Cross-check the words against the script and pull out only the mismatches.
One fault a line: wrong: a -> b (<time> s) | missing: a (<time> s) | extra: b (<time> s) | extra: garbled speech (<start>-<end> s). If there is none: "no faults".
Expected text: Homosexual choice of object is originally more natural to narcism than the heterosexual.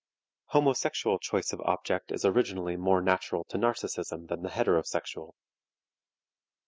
no faults